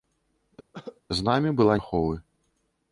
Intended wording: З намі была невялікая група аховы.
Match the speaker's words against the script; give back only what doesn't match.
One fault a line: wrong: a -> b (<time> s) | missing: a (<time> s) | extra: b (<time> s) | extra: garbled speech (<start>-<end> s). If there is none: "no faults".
missing: невялікая група (1.8 s)